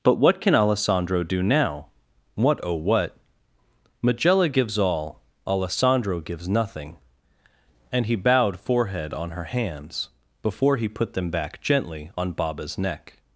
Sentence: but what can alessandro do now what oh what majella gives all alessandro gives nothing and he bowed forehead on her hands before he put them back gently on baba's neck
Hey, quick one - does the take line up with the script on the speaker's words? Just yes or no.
yes